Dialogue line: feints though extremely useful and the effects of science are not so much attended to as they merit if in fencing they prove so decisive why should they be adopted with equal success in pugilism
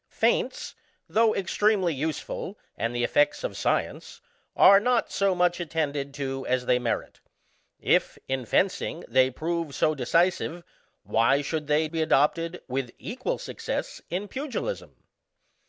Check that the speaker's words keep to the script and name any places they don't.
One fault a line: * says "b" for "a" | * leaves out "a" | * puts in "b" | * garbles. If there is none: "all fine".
all fine